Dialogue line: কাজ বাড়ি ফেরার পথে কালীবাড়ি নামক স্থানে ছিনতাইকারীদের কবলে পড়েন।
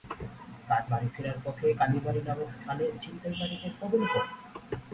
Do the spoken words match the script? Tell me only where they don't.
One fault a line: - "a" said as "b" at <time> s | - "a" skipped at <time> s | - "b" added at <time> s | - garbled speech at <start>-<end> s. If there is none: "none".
none